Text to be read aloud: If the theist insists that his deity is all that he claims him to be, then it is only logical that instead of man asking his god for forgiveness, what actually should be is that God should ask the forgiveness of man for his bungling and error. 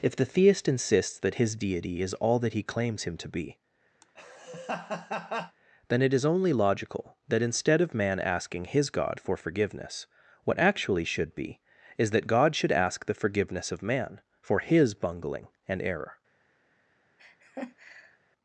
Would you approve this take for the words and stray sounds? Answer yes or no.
no